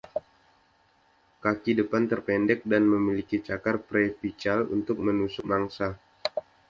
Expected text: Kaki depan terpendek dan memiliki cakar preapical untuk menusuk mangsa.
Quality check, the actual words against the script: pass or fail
pass